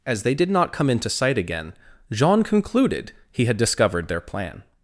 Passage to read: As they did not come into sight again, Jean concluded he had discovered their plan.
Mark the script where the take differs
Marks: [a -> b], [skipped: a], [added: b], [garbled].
As they did not come into sight again, Jean concluded he had discovered their plan.